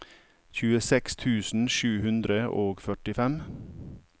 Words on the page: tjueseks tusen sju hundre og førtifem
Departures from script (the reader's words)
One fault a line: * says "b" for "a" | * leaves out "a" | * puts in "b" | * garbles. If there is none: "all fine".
all fine